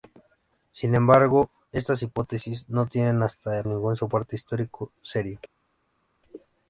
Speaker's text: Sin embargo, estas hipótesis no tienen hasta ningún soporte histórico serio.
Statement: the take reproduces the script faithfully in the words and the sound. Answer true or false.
true